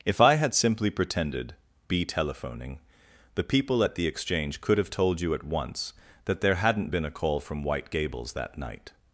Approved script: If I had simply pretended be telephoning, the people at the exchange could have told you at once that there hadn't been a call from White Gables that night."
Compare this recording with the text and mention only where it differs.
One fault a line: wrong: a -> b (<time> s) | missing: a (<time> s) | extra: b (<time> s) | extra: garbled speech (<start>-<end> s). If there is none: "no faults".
no faults